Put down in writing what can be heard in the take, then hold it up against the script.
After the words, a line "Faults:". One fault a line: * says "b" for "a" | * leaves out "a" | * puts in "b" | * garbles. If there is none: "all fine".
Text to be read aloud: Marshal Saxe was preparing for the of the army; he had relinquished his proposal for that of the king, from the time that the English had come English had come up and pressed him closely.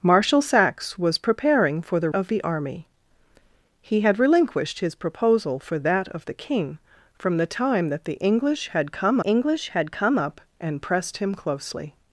Marshal Saxe was preparing for the of the army; he had relinquished his proposal for that of the king, from the time that the English had come English had come up and pressed him closely.
Faults:
all fine